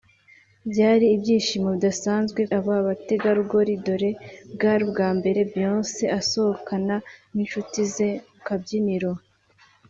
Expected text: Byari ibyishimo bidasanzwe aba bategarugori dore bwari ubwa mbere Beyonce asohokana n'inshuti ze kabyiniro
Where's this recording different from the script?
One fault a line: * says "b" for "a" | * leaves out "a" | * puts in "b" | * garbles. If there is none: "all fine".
all fine